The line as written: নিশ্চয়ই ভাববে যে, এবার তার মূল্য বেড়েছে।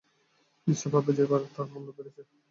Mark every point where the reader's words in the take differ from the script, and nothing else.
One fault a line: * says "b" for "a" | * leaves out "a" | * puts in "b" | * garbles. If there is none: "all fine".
all fine